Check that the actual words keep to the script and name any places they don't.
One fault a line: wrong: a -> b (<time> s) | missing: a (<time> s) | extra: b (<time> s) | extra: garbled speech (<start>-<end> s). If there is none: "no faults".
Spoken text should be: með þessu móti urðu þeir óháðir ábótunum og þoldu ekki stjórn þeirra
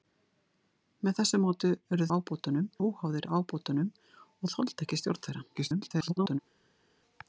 wrong: þeir -> ábótunum (2.2 s)
extra: garbled speech (5.6-6.4 s)